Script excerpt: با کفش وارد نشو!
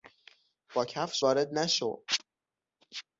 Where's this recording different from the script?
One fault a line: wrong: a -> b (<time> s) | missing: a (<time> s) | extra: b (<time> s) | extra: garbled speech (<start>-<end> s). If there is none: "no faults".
no faults